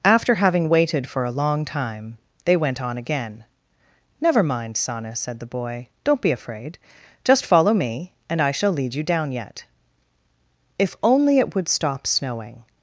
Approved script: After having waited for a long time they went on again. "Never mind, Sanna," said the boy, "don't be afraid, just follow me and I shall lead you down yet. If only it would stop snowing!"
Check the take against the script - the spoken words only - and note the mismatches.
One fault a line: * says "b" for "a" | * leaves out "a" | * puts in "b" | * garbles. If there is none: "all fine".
all fine